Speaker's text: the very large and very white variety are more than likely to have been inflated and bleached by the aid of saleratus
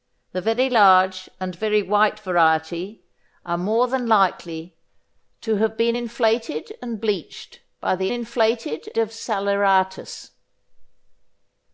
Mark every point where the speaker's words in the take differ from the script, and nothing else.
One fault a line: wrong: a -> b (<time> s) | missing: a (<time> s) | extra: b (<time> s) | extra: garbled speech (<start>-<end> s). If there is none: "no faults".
wrong: aid -> inflated (8.1 s)